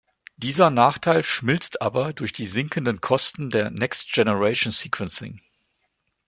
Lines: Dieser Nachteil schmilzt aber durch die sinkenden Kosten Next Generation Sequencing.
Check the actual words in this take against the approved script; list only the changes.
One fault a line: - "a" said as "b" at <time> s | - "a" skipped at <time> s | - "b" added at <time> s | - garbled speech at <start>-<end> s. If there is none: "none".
- "der" added at 3.5 s